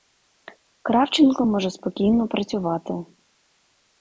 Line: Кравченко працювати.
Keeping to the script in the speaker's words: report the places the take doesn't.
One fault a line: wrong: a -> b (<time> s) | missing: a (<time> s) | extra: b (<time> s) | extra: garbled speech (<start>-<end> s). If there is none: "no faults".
extra: може спокійно (1.4 s)